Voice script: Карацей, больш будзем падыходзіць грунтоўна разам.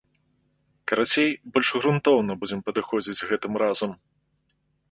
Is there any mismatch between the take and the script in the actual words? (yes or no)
yes